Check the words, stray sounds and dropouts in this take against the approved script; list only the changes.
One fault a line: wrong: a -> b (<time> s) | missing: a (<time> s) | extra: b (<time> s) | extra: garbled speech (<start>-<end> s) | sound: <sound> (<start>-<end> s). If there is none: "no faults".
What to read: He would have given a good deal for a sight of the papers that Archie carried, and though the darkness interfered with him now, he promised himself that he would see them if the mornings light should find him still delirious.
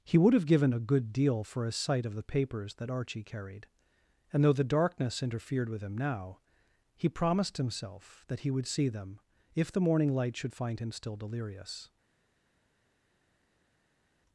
wrong: mornings -> morning (9.8 s)